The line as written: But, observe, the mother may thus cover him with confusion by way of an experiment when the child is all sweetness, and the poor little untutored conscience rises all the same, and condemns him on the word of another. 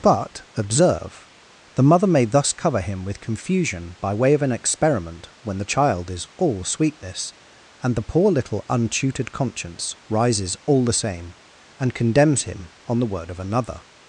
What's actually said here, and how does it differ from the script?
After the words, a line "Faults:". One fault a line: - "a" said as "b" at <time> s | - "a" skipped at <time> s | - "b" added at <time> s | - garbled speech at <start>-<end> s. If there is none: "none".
But, observe, the mother may thus cover him with confusion by way of an experiment when the child is all sweetness, and the poor little untutored conscience rises all the same, and condemns him on the word of another.
Faults:
none